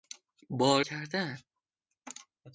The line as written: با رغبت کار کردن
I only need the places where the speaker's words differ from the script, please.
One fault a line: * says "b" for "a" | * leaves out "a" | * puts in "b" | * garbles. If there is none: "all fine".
* leaves out "رغبت کار"